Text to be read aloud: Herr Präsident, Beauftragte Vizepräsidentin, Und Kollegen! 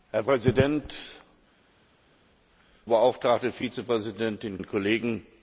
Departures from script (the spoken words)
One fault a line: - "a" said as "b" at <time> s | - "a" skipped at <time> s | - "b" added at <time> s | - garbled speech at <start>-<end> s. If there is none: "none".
none